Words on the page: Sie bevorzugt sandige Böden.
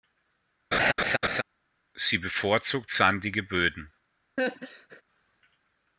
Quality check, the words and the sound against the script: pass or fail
fail